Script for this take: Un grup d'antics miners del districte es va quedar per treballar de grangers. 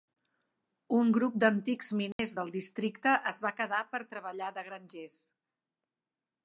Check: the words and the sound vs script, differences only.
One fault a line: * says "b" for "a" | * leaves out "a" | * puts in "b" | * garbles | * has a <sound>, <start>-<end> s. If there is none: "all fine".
* has a dropout, 2.1-2.2 s